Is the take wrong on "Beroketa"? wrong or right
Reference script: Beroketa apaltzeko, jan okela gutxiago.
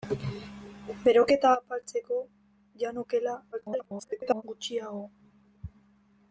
right